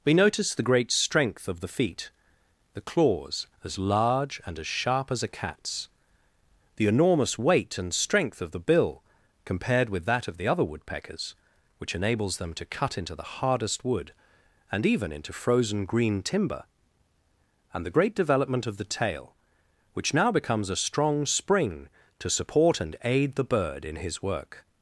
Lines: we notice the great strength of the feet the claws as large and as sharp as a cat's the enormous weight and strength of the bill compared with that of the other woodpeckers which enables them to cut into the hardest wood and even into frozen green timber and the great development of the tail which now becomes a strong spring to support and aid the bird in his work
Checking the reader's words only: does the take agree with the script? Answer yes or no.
yes